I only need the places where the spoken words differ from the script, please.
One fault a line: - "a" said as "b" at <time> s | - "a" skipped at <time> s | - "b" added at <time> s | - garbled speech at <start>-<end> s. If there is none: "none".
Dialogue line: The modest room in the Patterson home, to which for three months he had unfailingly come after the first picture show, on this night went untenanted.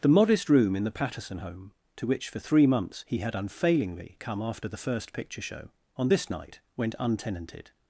none